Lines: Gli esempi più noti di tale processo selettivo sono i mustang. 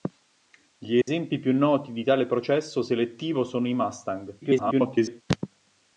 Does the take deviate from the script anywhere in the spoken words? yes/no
yes